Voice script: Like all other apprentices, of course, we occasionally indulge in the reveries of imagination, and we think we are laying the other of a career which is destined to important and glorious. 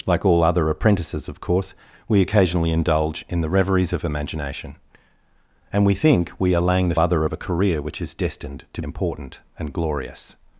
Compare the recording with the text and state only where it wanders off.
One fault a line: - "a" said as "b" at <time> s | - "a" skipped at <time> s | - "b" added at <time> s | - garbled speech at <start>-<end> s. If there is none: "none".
none